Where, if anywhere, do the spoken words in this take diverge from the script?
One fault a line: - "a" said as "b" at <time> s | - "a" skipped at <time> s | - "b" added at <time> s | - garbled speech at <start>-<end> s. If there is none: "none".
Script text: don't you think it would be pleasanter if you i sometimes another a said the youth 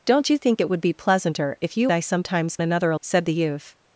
none